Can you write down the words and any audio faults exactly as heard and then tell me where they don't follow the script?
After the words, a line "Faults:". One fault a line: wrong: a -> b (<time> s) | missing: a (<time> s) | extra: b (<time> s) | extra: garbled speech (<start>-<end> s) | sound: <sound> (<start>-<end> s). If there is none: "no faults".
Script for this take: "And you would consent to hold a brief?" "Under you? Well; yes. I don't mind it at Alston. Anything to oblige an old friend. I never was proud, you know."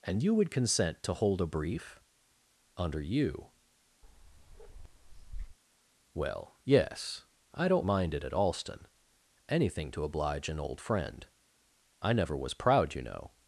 "And you would consent to hold a brief?" "Under you? Well; yes. I don't mind it at Alston. Anything to oblige an old friend. I never was proud, you know."
Faults:
sound: bark (4.0-5.6 s)